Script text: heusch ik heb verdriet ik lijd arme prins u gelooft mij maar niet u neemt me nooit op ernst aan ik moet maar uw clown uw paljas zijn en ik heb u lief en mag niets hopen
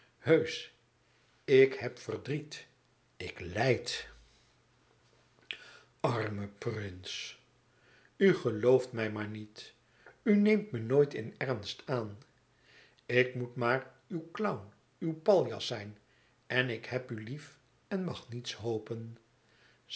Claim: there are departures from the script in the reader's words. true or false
true